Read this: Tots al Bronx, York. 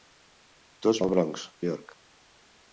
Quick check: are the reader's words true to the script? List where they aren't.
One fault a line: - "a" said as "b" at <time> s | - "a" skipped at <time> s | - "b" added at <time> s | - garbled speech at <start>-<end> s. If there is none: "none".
none